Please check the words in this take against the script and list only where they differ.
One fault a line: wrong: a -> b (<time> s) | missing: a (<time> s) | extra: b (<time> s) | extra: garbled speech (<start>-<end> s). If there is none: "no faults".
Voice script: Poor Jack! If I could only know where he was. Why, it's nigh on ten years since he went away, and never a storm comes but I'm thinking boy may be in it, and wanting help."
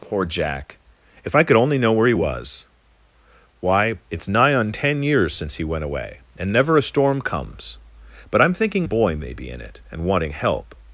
no faults